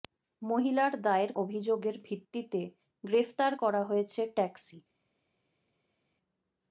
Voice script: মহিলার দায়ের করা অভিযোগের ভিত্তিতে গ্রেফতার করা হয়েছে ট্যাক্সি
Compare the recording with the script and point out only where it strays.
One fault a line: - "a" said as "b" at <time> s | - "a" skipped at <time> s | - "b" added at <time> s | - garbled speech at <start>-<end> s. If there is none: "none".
- "করা" skipped at 1.3 s